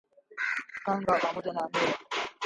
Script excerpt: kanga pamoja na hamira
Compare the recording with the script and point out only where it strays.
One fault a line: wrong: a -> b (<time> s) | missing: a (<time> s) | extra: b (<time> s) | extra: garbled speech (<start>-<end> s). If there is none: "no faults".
no faults